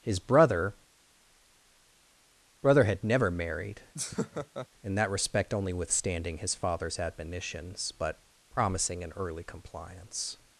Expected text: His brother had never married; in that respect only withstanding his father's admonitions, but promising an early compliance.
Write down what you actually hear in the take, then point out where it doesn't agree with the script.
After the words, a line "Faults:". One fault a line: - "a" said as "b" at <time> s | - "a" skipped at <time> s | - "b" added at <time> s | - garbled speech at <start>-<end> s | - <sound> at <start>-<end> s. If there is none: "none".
His brother brother had never married; in that respect only withstanding his father's admonitions, but promising an early compliance.
Faults:
- "brother" added at 2.6 s
- laugh at 3.9-4.7 s